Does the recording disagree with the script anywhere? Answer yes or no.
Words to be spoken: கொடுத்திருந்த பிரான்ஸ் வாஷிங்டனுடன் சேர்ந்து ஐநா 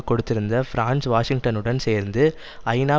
no